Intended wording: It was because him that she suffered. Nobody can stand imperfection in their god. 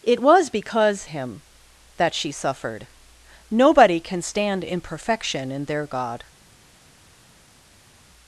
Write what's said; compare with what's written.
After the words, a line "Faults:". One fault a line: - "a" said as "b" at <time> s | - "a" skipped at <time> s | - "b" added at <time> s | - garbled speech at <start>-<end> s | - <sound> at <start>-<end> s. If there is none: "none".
It was because him that she suffered. Nobody can stand imperfection in their god.
Faults:
none